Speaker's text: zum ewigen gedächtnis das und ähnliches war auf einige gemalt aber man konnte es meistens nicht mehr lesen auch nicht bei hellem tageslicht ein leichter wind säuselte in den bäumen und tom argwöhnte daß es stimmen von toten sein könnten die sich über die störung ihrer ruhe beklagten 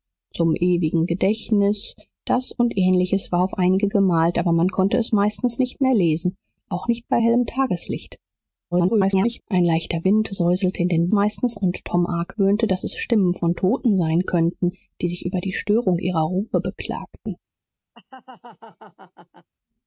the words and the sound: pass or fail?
fail